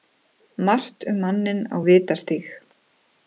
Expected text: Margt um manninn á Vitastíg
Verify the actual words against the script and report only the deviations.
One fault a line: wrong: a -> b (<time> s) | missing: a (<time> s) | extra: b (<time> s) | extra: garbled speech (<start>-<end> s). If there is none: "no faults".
no faults